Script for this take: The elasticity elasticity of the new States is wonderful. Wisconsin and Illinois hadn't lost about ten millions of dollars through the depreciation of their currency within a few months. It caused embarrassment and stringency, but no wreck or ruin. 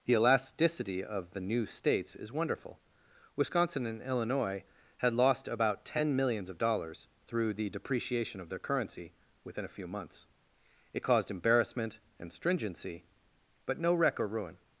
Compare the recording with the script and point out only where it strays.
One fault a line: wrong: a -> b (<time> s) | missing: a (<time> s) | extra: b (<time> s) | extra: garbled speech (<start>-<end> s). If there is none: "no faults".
missing: elasticity (1.0 s)
wrong: hadn't -> had (5.0 s)